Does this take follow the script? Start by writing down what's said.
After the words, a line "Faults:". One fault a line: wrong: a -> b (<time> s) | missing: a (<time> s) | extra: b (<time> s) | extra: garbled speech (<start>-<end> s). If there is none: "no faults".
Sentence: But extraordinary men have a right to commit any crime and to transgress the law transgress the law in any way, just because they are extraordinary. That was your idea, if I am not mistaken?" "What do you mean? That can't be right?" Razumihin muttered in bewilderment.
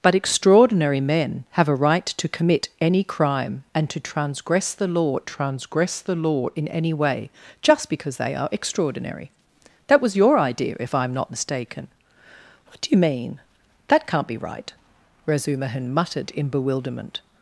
But extraordinary men have a right to commit any crime and to transgress the law transgress the law in any way, just because they are extraordinary. That was your idea, if I am not mistaken?" "What do you mean? That can't be right?" Razumihin muttered in bewilderment.
Faults:
no faults